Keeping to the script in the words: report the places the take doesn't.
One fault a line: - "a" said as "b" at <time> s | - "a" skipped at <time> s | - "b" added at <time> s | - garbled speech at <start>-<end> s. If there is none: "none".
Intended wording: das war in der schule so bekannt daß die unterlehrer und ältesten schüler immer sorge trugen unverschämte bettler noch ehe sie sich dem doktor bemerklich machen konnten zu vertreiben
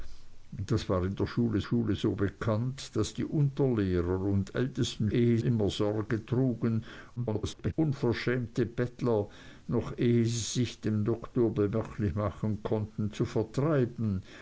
- "schule" added at 1.6 s
- "schüler" said as "ehe" at 5.1 s
- garbled speech at 7.2-7.7 s